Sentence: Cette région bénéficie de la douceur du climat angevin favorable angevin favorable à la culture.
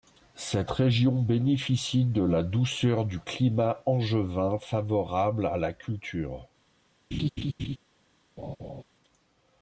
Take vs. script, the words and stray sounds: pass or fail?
fail